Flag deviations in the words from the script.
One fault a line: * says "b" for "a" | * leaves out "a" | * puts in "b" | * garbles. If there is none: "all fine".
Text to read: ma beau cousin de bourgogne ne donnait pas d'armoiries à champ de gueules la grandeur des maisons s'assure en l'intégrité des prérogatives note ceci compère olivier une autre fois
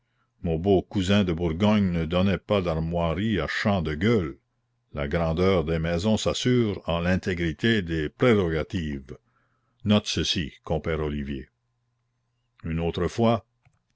* says "mon" for "ma"